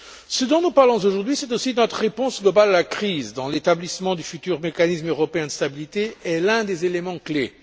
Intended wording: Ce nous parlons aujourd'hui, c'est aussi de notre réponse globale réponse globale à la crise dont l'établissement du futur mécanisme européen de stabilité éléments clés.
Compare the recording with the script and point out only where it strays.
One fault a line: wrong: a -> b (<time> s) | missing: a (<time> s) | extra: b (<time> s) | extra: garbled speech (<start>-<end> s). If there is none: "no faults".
extra: dont (0.5 s)
missing: réponse globale (2.7 s)
extra: est l'un des (6.2 s)